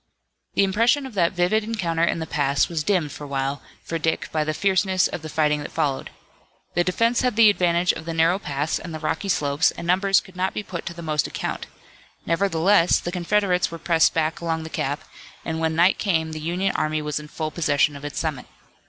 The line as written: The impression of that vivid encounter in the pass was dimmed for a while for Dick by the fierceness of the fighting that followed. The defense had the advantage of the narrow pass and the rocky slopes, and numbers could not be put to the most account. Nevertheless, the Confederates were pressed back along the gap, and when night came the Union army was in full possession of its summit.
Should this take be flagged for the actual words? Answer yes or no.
no